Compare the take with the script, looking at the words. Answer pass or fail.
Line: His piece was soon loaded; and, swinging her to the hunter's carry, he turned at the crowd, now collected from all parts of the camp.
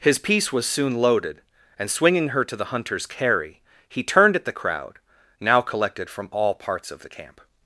pass